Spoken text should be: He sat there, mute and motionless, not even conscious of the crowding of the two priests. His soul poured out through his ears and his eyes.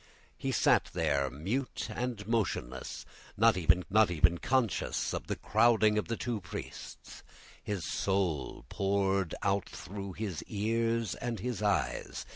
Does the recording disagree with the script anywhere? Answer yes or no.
yes